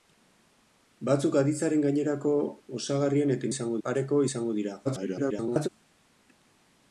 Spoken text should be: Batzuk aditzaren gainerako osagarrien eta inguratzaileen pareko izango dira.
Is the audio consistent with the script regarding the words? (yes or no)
no